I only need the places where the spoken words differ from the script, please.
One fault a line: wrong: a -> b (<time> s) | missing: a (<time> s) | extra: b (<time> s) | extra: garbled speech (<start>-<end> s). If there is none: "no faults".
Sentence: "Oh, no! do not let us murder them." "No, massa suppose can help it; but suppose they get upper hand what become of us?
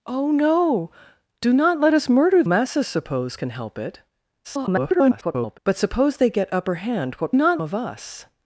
missing: them No (2.4 s)
extra: garbled speech (4.4-5.6 s)
wrong: become -> not (7.3 s)